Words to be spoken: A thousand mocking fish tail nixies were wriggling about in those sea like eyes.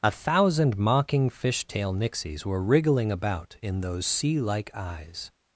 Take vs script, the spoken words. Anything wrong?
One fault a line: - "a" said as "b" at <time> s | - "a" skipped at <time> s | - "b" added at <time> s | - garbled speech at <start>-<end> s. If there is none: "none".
none